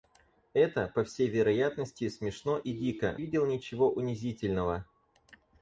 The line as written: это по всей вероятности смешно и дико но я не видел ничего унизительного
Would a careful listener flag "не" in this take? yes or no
yes